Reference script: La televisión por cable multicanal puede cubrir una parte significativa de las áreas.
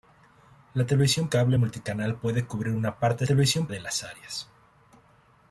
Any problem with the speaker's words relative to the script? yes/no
yes